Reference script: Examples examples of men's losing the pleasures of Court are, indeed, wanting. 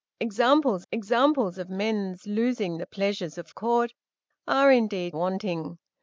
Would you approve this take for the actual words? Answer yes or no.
yes